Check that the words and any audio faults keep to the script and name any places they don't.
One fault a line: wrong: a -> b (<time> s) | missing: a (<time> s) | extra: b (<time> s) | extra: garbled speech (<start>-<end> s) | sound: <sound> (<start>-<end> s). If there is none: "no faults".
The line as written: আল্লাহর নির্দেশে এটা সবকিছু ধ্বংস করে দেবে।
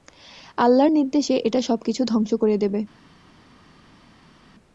no faults